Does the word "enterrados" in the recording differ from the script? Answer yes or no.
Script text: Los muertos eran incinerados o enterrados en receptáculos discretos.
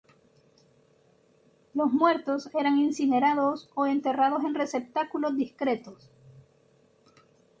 no